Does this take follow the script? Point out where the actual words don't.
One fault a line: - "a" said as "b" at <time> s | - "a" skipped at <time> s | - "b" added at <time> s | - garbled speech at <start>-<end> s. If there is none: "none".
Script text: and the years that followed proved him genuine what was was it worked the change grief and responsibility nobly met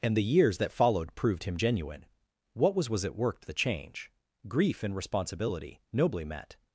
none